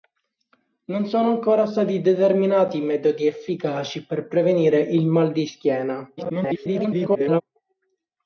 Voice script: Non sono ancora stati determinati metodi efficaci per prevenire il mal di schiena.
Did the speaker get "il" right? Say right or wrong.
right